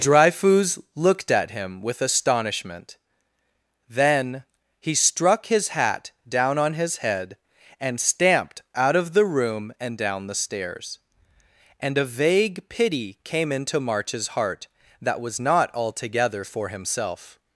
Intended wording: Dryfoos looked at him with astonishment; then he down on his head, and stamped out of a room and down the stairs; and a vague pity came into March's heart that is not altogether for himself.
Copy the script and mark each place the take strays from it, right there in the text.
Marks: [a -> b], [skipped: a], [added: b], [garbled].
Dryfoos looked at him with astonishment; then he [added: struck his hat] down on his head, and stamped out of [a -> the] room and down the stairs; and a vague pity came into March's heart that [is -> was] not altogether for himself.